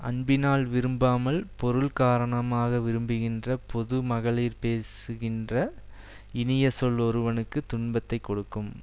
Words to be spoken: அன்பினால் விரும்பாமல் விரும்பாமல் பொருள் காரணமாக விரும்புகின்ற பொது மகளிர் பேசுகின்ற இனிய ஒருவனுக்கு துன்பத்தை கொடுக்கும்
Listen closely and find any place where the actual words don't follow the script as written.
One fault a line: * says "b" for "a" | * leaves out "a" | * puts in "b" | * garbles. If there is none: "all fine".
* leaves out "விரும்பாமல்"
* puts in "சொல்"